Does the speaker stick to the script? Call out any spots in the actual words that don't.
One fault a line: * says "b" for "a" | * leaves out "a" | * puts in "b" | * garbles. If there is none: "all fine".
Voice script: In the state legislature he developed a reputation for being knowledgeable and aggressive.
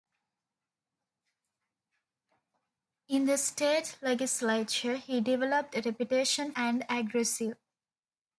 * leaves out "for being knowledgeable"